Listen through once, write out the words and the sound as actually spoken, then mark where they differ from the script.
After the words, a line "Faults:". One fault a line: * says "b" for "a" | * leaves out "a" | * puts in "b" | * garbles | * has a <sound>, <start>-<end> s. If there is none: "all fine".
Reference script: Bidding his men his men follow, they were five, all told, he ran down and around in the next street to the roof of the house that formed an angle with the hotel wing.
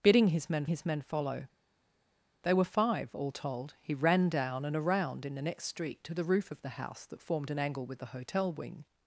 Bidding his men his men follow, they were five, all told, he ran down and around in the next street to the roof of the house that formed an angle with the hotel wing.
Faults:
all fine